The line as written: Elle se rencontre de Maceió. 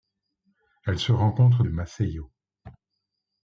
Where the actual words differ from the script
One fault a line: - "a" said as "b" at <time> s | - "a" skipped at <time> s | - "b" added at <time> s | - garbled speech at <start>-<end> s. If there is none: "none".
none